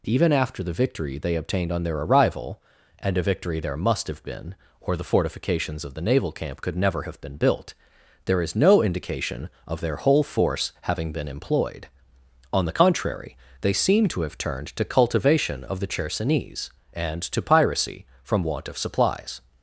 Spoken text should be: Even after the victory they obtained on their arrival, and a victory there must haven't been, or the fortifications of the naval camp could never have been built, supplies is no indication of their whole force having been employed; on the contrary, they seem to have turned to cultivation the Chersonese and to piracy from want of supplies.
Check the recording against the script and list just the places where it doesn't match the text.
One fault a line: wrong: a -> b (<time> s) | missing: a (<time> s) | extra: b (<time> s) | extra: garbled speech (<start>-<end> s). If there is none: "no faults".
wrong: haven't -> have (4.1 s)
wrong: supplies -> there (8.2 s)
extra: of (15.6 s)